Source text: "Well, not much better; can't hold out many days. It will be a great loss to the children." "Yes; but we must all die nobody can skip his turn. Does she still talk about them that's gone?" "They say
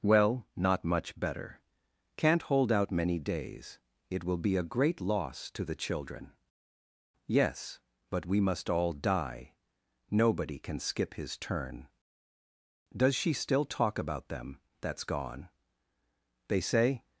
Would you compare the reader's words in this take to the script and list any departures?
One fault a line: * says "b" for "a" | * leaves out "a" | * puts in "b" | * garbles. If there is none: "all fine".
all fine